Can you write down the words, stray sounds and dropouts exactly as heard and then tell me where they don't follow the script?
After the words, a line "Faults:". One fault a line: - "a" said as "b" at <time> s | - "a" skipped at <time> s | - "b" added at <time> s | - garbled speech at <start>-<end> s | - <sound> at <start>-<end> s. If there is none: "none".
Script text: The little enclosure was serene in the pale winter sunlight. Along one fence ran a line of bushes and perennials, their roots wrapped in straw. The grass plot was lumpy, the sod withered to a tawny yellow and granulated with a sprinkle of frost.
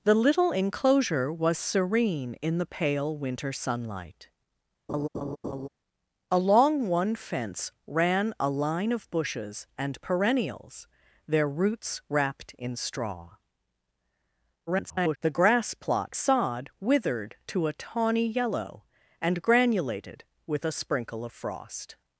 The little enclosure was serene in the pale winter sunlight. Along one fence ran a line of bushes and perennials, their roots wrapped in straw. [garbled] The grass plot sod withered to a tawny yellow and granulated with a sprinkle of frost.
Faults:
- laugh at 4.9-5.7 s
- garbled speech at 14.7-15.2 s
- "was lumpy the" skipped at 16.2 s